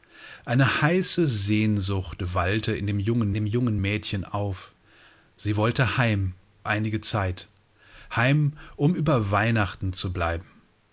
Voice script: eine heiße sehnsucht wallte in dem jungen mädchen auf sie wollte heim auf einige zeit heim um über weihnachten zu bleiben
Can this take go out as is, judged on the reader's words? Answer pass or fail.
fail